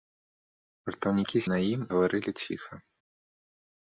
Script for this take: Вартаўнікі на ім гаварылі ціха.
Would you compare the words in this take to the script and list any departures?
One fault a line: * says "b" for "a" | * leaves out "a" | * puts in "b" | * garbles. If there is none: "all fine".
all fine